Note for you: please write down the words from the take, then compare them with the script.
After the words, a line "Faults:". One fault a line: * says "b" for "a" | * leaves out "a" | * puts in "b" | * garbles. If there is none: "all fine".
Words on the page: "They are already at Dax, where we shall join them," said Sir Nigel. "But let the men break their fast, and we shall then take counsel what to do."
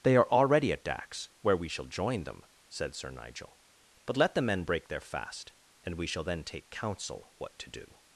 "They are already at Dax, where we shall join them," said Sir Nigel. "But let the men break their fast, and we shall then take counsel what to do."
Faults:
all fine